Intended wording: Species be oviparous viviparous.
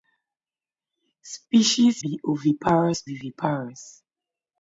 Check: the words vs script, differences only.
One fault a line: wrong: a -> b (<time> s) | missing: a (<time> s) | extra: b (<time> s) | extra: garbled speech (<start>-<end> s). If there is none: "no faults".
no faults